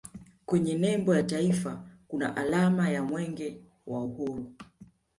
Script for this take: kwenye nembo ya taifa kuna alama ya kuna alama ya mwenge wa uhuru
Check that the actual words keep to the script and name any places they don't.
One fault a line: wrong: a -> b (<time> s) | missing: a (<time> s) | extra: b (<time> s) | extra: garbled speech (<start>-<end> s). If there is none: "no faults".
missing: kuna alama ya (3.0 s)